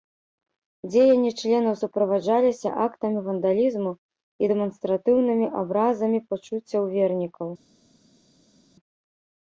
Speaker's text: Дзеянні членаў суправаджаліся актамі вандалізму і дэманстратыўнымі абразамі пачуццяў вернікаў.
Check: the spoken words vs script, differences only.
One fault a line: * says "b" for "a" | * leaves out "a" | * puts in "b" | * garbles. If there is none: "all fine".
all fine